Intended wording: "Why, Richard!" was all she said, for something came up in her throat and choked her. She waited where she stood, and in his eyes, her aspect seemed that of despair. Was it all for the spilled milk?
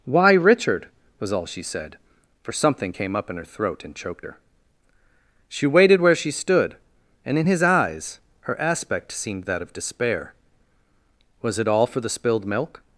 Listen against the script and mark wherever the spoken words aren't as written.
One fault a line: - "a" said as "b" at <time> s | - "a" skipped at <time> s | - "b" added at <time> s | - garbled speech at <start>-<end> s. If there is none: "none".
none